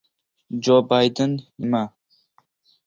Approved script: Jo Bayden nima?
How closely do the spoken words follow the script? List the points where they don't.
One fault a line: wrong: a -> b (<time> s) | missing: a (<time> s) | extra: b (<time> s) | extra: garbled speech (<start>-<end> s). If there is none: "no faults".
no faults